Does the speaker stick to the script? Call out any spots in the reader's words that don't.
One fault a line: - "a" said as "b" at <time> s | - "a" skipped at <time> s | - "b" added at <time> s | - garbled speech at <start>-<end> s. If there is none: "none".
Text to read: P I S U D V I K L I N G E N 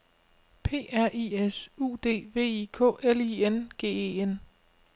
- "R" added at 0.9 s